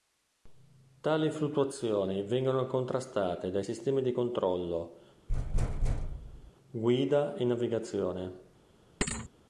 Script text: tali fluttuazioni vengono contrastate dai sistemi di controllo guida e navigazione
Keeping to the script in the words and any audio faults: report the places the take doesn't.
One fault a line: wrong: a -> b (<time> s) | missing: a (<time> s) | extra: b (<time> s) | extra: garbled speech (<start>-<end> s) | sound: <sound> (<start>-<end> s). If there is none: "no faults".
sound: thud (5.3-6.5 s)
sound: thud (9.0-9.3 s)